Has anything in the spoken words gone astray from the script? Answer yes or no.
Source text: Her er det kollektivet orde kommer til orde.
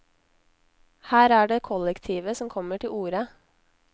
yes